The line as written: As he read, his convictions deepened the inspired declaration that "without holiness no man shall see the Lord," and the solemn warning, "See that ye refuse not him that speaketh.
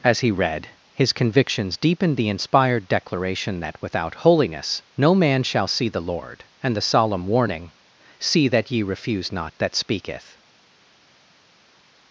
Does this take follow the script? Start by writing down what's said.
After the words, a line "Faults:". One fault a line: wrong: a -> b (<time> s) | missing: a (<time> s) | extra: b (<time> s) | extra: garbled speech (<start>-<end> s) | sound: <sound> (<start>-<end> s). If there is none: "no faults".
As he read, his convictions deepened the inspired declaration that "without holiness no man shall see the Lord," and the solemn warning, "See that ye refuse not that speaketh.
Faults:
missing: him (9.5 s)